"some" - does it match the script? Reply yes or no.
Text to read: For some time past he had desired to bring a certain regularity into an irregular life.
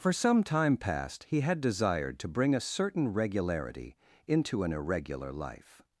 yes